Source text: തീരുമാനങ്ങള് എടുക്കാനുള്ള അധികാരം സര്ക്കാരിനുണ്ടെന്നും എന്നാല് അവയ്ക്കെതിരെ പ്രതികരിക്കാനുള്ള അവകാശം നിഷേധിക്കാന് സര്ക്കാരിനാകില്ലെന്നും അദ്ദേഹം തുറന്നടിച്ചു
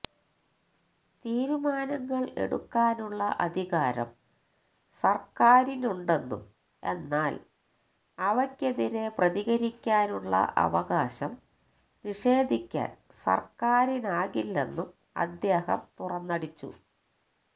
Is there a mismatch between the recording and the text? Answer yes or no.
no